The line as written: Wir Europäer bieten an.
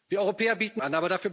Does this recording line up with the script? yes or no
yes